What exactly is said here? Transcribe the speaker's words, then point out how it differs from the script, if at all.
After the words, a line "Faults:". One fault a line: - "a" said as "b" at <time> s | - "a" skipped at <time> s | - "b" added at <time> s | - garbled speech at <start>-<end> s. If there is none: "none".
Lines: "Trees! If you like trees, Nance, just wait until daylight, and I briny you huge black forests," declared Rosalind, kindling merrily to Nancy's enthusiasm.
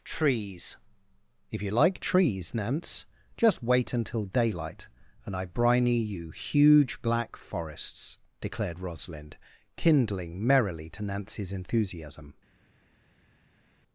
"Trees! If you like trees, Nance, just wait until daylight, and I briny you huge black forests," declared Rosalind, kindling merrily to Nancy's enthusiasm.
Faults:
none